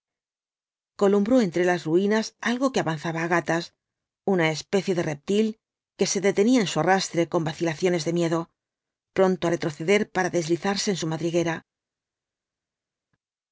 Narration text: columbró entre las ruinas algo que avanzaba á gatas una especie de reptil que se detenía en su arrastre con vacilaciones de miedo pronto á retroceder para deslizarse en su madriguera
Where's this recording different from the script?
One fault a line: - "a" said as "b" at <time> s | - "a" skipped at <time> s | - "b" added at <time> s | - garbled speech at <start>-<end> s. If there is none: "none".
none